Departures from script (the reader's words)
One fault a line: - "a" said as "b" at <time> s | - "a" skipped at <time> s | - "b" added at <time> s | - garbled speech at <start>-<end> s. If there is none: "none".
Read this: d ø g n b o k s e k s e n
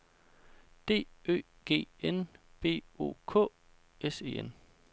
- "k s e" skipped at 4.4 s